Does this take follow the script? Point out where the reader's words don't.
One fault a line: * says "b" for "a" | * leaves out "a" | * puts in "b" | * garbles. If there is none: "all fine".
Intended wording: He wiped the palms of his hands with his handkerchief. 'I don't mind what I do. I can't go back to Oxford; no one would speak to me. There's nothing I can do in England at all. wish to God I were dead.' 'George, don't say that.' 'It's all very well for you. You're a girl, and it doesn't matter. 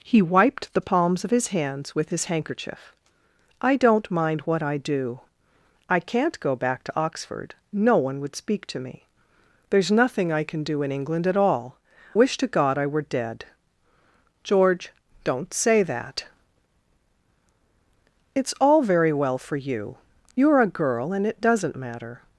all fine